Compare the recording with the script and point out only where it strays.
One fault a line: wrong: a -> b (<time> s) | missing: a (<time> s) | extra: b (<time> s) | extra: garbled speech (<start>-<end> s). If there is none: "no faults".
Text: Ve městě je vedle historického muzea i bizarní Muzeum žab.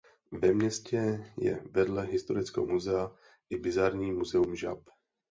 no faults